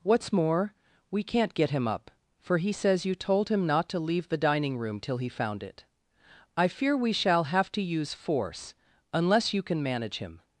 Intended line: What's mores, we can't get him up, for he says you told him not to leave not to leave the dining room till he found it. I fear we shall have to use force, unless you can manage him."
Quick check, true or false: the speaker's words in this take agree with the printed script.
false